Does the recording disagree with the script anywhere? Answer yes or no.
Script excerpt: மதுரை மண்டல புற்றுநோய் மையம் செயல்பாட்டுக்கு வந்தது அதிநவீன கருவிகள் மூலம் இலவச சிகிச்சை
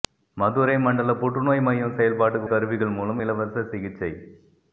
yes